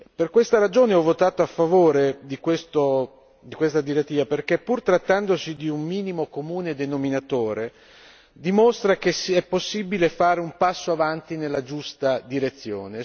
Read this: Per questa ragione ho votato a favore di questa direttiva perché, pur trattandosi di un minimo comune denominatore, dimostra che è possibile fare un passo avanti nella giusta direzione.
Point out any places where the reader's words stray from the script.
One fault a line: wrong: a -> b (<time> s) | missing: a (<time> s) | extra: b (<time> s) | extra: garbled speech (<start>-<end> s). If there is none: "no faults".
no faults